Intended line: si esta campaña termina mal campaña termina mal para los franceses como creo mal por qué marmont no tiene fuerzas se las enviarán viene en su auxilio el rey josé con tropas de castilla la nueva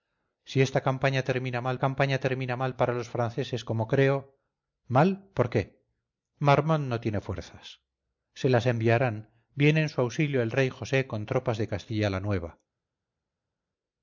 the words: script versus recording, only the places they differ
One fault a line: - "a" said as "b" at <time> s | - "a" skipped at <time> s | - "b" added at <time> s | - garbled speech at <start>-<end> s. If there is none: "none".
none